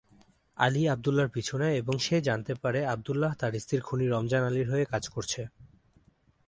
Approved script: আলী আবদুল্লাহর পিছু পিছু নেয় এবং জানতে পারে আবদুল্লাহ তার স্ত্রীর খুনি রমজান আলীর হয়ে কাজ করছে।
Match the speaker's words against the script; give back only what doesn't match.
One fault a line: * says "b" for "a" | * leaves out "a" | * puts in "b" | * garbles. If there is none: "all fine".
* leaves out "পিছু"
* puts in "সে"